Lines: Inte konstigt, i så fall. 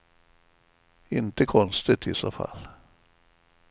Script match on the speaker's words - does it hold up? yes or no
yes